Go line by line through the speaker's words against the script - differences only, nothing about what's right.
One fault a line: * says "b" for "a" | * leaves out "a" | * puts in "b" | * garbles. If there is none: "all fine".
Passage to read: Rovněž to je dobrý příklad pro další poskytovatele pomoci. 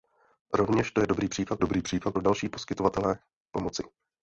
* puts in "dobrý příklad"